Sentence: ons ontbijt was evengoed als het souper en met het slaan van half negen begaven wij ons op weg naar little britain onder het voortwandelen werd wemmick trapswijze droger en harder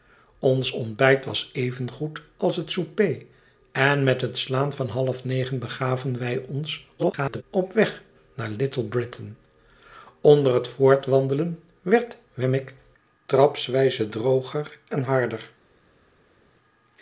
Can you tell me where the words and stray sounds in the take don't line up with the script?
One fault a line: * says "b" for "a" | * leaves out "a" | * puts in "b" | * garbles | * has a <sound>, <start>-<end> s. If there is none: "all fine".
* garbles